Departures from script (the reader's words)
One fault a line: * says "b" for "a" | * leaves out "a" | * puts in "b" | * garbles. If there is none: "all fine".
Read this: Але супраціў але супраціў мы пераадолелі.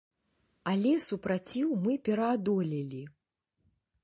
* leaves out "але супраціў"